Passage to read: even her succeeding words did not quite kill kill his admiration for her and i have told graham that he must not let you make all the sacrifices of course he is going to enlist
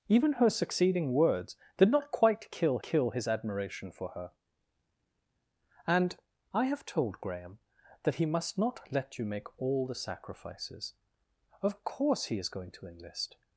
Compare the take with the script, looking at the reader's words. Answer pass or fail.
pass